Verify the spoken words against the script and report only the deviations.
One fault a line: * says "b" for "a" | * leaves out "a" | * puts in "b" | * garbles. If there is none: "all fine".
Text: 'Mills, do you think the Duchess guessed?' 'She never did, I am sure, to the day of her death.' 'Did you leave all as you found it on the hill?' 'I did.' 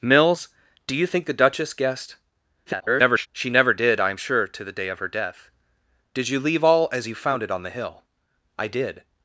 * garbles